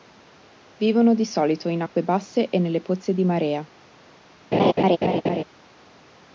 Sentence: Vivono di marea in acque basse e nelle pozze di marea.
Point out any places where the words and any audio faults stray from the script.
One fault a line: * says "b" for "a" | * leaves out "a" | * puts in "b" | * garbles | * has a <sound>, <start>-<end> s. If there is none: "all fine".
* says "solito" for "marea"
* has a laugh, 4.5-5.4 s